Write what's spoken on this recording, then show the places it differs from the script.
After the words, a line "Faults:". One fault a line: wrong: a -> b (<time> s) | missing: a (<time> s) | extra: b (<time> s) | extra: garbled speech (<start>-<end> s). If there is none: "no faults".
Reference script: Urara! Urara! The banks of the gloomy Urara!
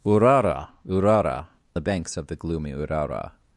Urara! Urara! The banks of the gloomy Urara!
Faults:
no faults